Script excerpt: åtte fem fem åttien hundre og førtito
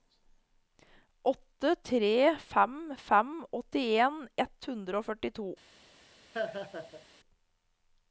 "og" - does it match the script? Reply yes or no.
yes